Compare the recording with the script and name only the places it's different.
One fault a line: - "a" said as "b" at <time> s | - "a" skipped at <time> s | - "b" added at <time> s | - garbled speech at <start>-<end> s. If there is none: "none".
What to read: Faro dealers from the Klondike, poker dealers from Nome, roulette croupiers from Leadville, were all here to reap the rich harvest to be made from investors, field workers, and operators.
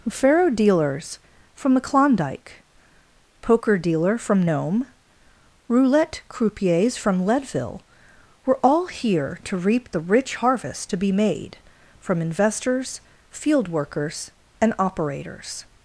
- "dealers" said as "dealer" at 3.8 s